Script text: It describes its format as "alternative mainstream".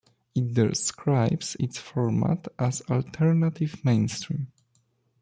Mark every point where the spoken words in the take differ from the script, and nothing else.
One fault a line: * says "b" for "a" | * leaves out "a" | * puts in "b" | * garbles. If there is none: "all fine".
all fine